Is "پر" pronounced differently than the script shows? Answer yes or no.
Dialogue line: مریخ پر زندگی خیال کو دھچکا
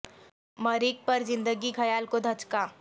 no